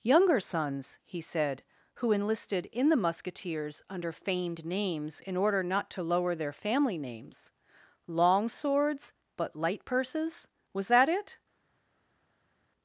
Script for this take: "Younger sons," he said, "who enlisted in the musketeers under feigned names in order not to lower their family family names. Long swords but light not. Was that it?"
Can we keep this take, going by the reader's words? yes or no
no